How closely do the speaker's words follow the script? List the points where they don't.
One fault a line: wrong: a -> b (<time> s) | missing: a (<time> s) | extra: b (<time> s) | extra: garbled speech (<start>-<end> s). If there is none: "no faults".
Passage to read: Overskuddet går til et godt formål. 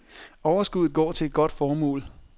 no faults